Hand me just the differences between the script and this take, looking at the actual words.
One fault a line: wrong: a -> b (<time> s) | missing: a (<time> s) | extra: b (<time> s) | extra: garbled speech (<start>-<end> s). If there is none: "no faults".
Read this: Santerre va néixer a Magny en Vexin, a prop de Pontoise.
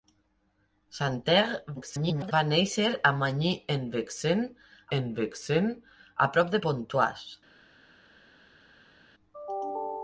extra: garbled speech (1.8-2.3 s)
extra: en Vexin (5.0 s)